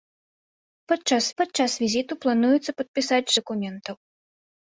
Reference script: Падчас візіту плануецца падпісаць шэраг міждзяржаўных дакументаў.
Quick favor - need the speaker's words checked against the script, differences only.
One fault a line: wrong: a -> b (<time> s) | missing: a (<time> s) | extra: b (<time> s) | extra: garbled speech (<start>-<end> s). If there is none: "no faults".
extra: падчас (1.4 s)
missing: шэраг міждзяржаўных (3.3 s)